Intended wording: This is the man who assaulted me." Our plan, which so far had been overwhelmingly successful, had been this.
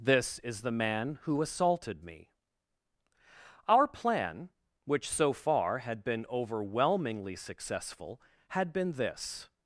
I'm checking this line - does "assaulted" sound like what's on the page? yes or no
yes